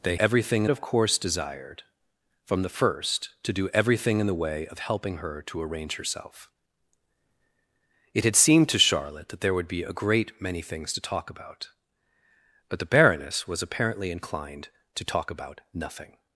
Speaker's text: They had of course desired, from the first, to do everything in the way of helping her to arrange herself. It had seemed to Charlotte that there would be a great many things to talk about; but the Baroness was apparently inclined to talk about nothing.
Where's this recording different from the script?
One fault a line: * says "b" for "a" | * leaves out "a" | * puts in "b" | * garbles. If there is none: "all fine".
* says "everything" for "had"